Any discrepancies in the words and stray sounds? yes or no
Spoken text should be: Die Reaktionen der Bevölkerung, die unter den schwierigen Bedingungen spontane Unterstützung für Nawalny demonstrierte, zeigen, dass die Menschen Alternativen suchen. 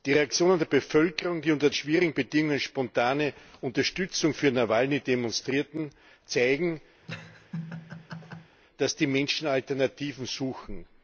yes